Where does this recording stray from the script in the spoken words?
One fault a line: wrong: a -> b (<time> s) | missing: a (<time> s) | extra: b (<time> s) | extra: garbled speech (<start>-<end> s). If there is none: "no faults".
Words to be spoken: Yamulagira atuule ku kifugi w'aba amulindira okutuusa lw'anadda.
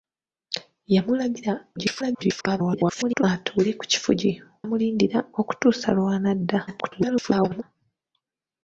extra: garbled speech (1.8-3.2 s)
missing: w'aba (4.3 s)
extra: garbled speech (6.7-7.6 s)